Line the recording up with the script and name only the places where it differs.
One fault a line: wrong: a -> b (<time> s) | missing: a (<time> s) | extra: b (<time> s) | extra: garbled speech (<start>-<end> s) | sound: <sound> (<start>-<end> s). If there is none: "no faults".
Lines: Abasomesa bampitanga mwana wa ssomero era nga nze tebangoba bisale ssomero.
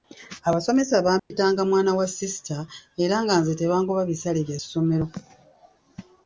sound: dropout (1.2-1.3 s)
wrong: ssomero -> sisita (2.1 s)
extra: bya (4.5 s)